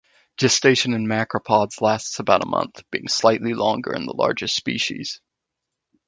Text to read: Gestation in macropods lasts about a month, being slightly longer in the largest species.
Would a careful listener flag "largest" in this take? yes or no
no